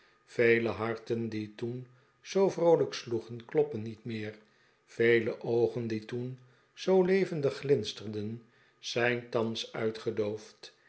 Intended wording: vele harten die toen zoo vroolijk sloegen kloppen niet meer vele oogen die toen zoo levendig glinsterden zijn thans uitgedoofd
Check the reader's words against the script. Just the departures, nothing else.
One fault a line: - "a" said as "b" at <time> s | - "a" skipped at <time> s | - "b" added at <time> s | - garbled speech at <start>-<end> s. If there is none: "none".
none